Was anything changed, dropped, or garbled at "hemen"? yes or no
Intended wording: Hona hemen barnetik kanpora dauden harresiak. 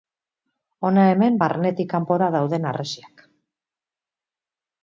no